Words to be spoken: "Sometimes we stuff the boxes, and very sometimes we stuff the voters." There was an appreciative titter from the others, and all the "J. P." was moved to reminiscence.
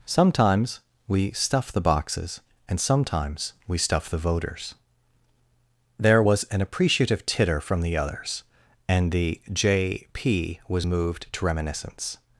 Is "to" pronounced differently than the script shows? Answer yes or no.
no